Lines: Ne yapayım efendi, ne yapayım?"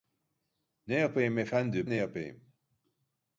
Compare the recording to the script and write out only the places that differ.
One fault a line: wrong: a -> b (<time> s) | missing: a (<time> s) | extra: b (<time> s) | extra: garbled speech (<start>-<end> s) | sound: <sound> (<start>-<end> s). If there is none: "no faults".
no faults